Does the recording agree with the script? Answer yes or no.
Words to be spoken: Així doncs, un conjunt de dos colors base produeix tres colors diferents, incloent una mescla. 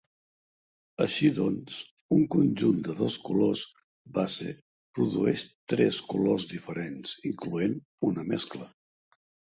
yes